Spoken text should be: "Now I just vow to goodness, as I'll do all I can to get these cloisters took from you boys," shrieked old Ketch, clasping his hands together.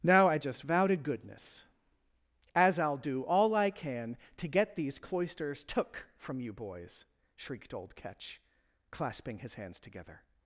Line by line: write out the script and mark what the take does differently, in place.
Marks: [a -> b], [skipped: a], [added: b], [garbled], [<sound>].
"Now I just vow to goodness, as I'll do all I can to get these cloisters took from you boys," shrieked old Ketch, clasping his hands together.